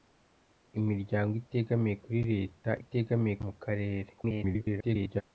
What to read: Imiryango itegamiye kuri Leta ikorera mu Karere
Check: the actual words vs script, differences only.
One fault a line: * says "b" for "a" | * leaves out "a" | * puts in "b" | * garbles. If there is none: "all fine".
* says "itegamiye" for "ikorera"
* garbles